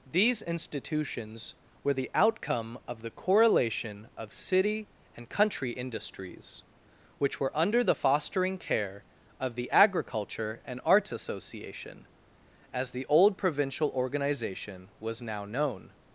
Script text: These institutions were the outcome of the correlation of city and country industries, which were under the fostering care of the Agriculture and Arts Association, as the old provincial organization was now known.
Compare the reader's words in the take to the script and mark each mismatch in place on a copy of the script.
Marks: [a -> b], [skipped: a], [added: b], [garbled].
These institutions were the outcome of the correlation of city and country industries, which were under the fostering care of the Agriculture and Arts Association, as the old provincial organization was now known.